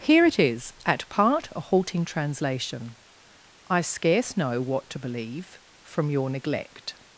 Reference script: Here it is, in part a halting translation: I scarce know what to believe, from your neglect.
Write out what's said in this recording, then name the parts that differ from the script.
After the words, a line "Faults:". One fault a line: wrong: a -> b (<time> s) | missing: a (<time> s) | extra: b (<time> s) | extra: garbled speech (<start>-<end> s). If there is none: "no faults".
Here it is, at part a halting translation: I scarce know what to believe, from your neglect.
Faults:
wrong: in -> at (0.8 s)